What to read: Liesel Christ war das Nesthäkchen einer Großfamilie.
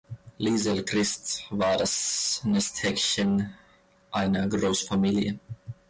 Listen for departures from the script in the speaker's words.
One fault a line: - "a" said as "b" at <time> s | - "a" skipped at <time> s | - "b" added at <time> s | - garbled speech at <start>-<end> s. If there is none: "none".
none